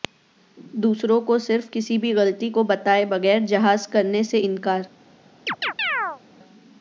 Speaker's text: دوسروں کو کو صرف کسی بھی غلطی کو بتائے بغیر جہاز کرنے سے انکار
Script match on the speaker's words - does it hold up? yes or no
no